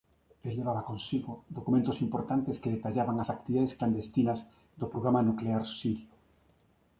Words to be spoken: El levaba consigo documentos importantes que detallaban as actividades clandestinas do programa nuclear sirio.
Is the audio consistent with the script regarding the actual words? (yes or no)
yes